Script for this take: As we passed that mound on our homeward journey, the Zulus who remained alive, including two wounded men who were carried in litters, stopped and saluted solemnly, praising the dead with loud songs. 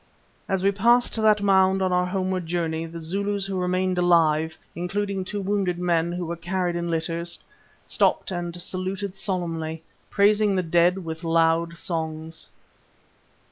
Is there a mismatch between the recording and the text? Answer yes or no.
no